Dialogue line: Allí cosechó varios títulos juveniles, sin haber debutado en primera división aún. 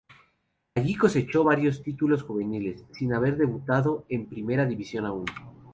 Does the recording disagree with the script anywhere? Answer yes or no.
no